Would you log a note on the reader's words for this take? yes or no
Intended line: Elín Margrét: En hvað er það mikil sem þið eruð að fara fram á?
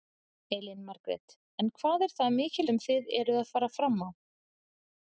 no